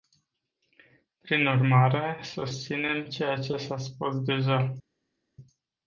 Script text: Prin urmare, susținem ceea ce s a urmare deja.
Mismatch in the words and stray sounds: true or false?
true